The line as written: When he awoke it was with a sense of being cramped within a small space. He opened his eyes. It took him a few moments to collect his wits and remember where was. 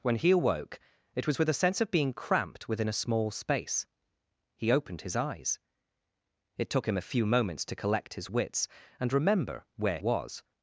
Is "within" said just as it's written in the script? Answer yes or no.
yes